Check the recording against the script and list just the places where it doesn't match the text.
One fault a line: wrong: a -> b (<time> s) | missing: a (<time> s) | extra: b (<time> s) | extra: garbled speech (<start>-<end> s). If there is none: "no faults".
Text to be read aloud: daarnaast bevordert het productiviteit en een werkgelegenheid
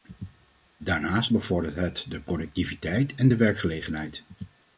extra: de (2.1 s)
wrong: een -> de (3.3 s)